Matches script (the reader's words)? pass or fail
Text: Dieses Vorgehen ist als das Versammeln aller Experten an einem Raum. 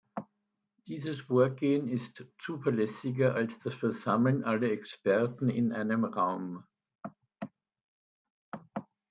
fail